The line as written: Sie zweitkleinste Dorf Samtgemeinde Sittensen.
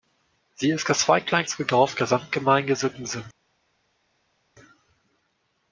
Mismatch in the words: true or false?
true